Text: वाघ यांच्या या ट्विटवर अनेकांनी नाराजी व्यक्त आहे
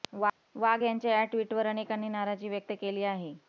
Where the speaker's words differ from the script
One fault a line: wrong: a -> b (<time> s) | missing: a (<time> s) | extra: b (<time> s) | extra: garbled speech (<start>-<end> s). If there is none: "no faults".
extra: केली (2.8 s)